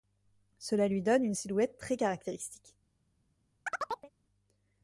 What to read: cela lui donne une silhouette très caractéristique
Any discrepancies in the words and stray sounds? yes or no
yes